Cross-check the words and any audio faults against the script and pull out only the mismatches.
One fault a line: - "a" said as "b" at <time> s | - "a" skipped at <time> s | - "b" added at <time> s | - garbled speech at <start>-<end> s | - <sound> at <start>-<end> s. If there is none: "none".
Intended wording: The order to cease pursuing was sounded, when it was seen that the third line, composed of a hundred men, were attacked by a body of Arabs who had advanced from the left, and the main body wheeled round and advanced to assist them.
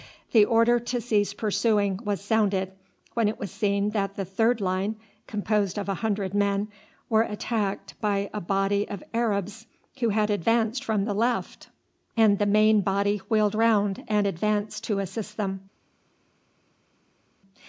none